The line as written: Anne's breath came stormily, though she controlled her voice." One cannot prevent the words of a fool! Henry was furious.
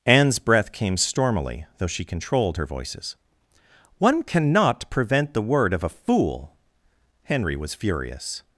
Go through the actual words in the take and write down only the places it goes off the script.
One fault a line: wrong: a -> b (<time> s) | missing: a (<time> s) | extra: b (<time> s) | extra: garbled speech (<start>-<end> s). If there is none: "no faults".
wrong: voice -> voices (2.6 s)
wrong: words -> word (5.4 s)